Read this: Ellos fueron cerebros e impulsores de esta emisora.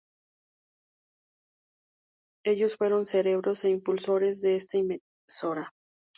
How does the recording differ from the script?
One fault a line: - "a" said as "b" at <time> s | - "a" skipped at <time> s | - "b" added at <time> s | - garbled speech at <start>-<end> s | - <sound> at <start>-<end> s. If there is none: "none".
none